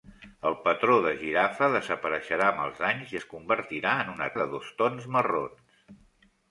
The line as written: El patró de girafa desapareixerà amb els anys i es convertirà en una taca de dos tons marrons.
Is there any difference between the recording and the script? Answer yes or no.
yes